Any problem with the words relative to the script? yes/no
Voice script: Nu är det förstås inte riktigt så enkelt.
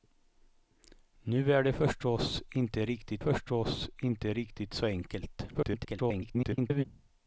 yes